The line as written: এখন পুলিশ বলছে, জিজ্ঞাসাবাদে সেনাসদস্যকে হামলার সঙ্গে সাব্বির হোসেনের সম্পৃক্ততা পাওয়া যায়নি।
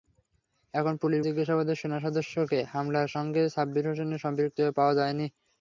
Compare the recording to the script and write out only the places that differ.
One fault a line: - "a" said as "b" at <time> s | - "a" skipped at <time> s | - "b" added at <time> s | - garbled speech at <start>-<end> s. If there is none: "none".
- "বলছে" skipped at 1.2 s